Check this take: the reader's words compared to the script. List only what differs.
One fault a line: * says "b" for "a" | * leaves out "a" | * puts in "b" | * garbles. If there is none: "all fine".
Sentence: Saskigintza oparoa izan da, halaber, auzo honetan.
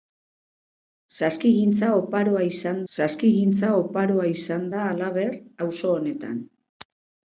* puts in "saskigintza oparoa izan"